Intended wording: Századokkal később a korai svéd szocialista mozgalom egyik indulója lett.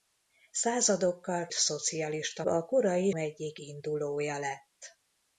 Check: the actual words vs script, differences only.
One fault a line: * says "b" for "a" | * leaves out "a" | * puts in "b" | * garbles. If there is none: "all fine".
* says "szocialista" for "később"
* leaves out "svéd szocialista mozgalom"